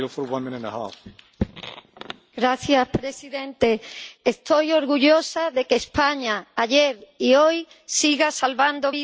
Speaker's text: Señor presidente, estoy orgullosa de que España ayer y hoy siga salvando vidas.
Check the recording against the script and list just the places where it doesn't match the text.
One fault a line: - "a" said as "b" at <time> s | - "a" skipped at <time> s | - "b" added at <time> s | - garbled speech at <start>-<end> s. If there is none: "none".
none